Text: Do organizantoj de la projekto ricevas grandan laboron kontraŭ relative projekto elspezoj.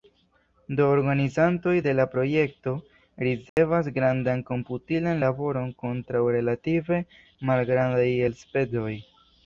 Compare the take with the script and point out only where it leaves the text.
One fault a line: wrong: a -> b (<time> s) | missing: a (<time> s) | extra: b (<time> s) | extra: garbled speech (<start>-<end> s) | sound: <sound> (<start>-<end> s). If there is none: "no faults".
sound: dropout (3.5-3.6 s)
extra: komputilan (4.5 s)
wrong: projekto -> malgrandaj (7.5 s)